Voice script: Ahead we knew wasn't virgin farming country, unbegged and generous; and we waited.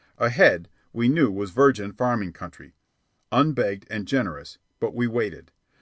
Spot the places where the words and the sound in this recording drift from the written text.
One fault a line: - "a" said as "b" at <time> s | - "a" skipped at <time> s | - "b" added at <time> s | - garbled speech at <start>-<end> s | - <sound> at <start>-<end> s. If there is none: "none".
- "wasn't" said as "was" at 1.3 s
- "and" said as "but" at 4.8 s